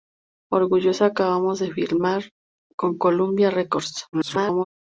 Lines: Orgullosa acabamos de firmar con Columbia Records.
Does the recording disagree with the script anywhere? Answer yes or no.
yes